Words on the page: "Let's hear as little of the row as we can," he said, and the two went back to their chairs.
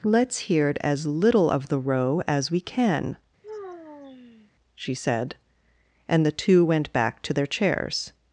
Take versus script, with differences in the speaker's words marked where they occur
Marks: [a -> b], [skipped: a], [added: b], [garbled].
"Let's hear as little of the row as we can," [he -> she] said, and the two went back to their chairs.